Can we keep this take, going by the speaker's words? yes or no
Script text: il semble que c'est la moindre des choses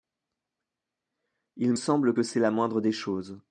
yes